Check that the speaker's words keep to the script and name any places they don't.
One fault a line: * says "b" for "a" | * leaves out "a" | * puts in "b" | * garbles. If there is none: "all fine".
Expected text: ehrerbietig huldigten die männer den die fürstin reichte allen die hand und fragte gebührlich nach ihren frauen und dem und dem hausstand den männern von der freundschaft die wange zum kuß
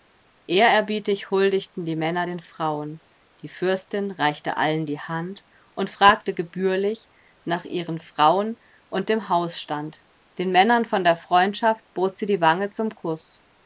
* puts in "frauen"
* leaves out "und dem"
* puts in "bot sie"